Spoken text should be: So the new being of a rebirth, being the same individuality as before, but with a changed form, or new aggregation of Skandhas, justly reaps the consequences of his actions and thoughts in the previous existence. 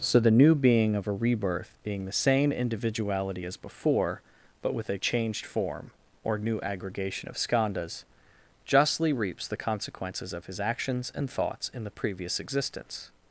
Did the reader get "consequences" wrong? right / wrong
right